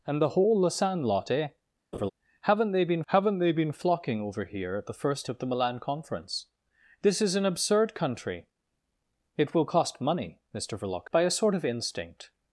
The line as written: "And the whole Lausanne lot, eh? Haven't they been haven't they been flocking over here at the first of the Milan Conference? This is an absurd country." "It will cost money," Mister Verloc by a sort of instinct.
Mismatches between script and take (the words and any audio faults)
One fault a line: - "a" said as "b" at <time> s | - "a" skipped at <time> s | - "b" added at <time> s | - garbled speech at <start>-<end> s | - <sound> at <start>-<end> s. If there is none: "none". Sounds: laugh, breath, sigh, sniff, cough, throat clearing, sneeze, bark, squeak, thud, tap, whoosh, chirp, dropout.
- laugh at 1.9-2.1 s